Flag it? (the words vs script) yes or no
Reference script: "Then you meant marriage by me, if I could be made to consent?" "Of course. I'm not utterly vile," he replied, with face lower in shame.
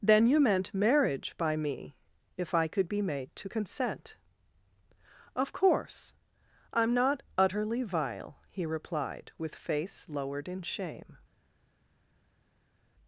yes